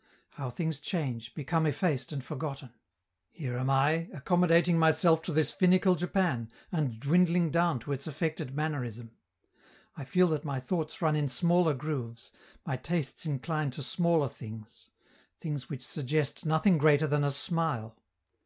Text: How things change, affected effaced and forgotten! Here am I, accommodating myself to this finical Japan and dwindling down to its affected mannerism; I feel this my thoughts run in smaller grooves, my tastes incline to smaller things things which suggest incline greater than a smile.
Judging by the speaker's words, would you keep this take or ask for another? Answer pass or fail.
fail